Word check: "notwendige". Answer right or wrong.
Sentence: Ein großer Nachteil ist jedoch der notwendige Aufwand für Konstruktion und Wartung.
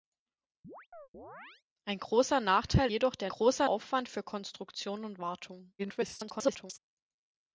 wrong